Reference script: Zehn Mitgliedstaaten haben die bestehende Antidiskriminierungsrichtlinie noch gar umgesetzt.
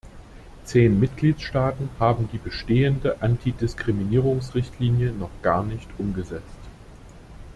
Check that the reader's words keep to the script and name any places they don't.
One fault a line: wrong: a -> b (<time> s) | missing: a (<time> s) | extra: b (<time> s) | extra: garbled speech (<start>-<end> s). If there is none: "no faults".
extra: nicht (5.6 s)